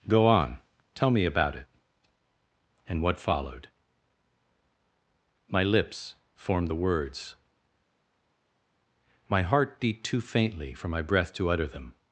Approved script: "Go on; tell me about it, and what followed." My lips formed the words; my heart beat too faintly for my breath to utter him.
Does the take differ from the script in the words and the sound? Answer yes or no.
yes